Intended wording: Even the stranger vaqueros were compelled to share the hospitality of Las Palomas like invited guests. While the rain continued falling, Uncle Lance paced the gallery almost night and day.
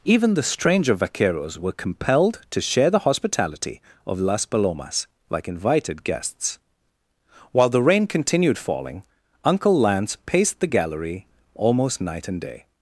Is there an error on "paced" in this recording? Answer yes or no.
no